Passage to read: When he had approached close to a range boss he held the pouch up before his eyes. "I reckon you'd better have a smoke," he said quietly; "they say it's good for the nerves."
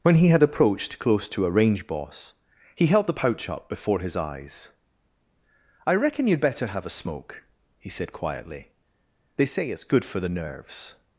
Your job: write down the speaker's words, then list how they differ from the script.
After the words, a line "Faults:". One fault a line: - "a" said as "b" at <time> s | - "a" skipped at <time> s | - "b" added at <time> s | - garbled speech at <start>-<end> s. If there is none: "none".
When he had approached close to a range boss he held the pouch up before his eyes. "I reckon you'd better have a smoke," he said quietly; "they say it's good for the nerves."
Faults:
none